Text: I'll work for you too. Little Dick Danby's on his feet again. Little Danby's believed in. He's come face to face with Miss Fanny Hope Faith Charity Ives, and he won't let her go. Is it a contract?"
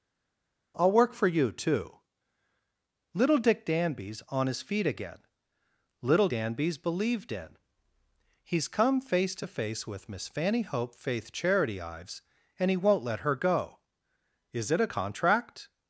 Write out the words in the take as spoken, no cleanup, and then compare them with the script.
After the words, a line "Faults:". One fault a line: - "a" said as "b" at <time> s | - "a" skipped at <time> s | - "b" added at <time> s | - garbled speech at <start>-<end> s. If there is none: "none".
I'll work for you too. Little Dick Danby's on his feet again. Little Danby's believed in. He's come face to face with Miss Fanny Hope Faith Charity Ives, and he won't let her go. Is it a contract?"
Faults:
none